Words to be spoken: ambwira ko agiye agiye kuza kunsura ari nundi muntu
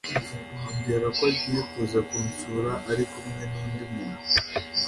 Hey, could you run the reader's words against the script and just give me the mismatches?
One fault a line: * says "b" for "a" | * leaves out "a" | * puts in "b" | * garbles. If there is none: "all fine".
* leaves out "agiye"
* puts in "kumwe"